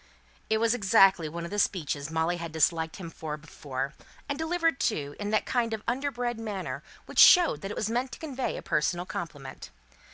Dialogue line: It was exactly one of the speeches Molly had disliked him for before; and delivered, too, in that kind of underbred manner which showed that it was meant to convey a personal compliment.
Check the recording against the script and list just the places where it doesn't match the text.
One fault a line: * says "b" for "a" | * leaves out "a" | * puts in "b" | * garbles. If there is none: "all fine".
all fine